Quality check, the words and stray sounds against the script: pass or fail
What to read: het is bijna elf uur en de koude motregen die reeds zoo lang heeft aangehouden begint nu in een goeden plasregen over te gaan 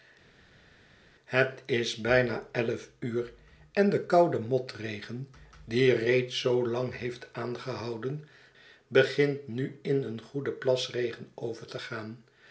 pass